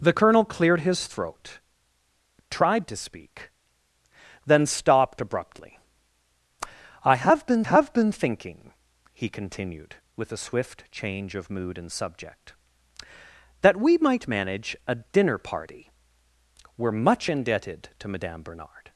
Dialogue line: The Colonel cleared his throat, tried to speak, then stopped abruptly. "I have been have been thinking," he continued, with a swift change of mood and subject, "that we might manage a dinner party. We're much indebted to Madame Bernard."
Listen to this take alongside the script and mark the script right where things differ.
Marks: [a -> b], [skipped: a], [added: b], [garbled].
The Colonel cleared his throat, tried to speak, then stopped abruptly. "I have been have been thinking," he continued, with a swift change of mood and subject, "that we might manage a dinner party. We're much indebted to Madame Bernard."